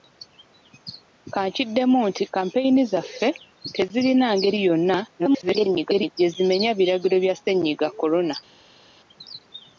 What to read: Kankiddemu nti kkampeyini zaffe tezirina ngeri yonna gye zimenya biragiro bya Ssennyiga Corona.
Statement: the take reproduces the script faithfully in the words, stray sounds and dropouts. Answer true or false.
false